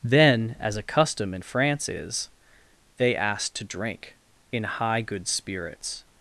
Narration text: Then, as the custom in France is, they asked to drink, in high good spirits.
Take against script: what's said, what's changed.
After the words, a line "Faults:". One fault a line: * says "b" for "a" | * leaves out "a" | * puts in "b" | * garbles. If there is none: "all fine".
Then, as a custom in France is, they asked to drink, in high good spirits.
Faults:
* says "a" for "the"